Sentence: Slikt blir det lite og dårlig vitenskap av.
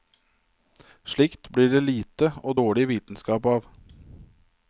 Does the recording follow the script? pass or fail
pass